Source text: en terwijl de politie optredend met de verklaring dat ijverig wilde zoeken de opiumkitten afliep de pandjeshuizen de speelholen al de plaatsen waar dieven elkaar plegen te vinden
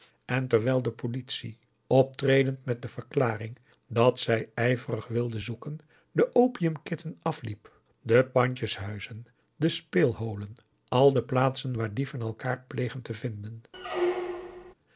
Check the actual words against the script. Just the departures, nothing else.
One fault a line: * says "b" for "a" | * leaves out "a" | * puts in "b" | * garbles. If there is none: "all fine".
* puts in "zij"